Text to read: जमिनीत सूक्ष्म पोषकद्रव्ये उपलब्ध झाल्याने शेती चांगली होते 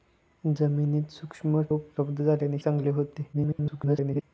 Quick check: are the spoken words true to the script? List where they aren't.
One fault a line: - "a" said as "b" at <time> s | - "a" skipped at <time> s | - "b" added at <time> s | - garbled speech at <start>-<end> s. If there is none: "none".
- "पोषकद्रव्ये" skipped at 1.6 s
- "शेती" skipped at 2.6 s
- garbled speech at 3.3-4.2 s